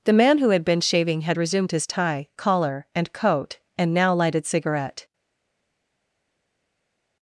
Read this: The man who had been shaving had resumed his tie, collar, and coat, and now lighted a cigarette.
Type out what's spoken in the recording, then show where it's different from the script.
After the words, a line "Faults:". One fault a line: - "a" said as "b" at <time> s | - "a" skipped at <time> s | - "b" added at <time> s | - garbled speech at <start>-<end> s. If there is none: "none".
The man who had been shaving had resumed his tie, collar, and coat, and now lighted cigarette.
Faults:
- "a" skipped at 4.4 s